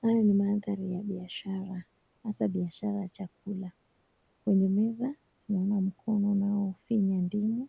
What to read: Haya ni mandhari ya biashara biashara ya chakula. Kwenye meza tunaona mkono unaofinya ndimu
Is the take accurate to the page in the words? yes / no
no